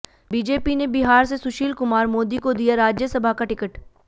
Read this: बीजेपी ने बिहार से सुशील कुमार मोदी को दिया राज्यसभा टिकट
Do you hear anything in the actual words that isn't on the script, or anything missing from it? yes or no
yes